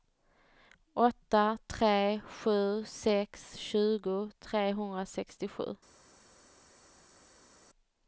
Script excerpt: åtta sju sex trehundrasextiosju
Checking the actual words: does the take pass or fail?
fail